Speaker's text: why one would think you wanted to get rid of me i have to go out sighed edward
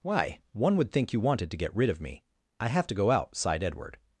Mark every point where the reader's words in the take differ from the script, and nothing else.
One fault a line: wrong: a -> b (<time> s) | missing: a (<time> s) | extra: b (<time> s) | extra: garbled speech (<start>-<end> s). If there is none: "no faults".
no faults